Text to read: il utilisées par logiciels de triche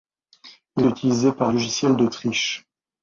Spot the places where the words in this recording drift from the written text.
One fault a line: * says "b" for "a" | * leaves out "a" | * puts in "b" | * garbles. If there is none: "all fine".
all fine